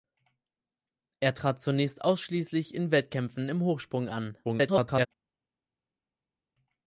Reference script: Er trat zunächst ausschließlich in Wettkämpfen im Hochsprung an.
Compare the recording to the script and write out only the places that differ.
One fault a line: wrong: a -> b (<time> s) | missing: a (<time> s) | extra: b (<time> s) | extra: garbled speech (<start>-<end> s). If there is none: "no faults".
extra: garbled speech (4.4-5.1 s)